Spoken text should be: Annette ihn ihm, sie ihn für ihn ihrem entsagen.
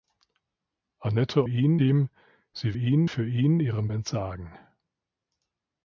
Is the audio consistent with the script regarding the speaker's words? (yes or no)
yes